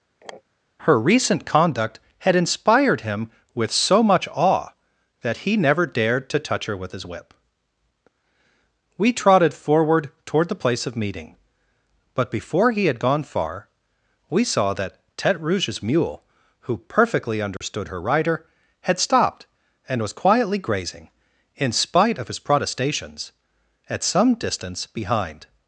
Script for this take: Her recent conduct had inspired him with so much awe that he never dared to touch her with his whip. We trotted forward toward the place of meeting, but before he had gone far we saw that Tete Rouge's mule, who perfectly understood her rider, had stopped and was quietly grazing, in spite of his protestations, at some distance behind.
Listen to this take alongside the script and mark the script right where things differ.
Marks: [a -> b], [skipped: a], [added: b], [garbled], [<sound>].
[sniff] Her recent conduct had inspired him with so much awe that he never dared to touch her with his whip. We trotted forward toward the place of meeting, but before he had gone far we saw that Tete Rouge's mule, who perfectly understood [dropout] her rider, had stopped and was quietly grazing, in spite of his protestations, at some distance behind.